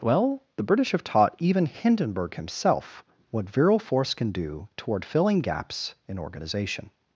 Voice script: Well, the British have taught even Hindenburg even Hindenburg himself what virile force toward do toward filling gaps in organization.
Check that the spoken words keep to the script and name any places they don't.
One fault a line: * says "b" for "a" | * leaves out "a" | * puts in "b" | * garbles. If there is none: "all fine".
* leaves out "even Hindenburg"
* says "can" for "toward"